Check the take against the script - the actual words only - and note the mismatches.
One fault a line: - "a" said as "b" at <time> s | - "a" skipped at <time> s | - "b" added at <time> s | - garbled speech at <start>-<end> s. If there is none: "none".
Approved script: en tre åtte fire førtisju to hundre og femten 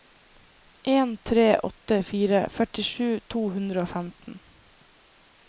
none